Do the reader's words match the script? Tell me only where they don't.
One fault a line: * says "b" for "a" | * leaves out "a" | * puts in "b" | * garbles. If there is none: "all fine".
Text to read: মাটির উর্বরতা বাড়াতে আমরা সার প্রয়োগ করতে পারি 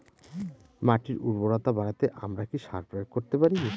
* puts in "কি"